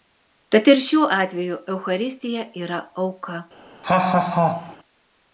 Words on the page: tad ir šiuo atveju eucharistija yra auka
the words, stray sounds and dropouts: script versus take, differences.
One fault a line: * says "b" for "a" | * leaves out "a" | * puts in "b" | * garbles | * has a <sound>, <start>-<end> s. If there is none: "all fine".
* has a laugh, 3.8-4.8 s